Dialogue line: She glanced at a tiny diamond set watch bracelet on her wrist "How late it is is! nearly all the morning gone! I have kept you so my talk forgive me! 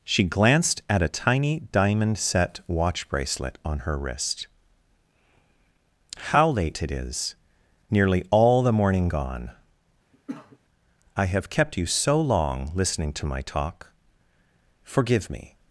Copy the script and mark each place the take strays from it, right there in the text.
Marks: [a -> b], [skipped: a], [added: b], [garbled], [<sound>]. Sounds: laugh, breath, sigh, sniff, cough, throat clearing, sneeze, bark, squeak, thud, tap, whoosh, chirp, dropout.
She glanced at a tiny diamond set watch bracelet on her wrist "How late it is [skipped: is!] nearly all the morning gone! [cough] I have kept you so [added: long listening to] my talk forgive me!